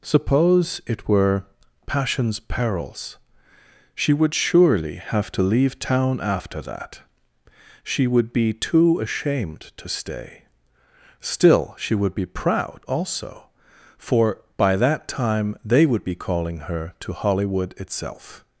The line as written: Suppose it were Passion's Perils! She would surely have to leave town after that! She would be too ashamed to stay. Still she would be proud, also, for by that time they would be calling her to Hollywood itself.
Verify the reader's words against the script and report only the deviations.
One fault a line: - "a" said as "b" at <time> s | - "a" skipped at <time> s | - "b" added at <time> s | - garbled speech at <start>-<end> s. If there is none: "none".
none